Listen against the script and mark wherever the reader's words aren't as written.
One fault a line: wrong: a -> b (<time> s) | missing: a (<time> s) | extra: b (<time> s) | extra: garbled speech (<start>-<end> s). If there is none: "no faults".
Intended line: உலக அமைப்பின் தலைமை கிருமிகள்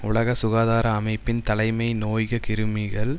extra: சுகாதார (0.3 s)
extra: நோய்க (1.9 s)